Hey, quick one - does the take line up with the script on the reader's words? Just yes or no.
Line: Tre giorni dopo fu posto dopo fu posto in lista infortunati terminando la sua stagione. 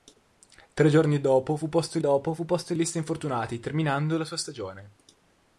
yes